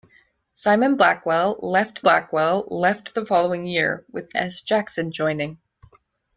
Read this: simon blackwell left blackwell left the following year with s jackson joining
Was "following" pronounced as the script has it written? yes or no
yes